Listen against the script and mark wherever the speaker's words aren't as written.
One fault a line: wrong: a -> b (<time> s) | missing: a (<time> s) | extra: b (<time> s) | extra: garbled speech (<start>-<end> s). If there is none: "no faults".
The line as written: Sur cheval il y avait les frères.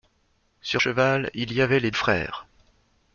no faults